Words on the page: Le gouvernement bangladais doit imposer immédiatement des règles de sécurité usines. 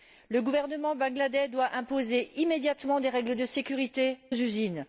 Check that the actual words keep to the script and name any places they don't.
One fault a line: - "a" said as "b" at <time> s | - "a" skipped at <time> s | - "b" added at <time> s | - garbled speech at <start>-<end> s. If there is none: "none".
none